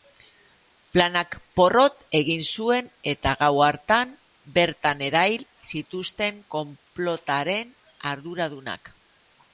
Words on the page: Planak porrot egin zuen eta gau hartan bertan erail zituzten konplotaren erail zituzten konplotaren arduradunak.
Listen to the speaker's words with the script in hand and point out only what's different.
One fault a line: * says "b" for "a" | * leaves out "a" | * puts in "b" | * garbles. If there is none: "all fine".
* leaves out "erail zituzten konplotaren"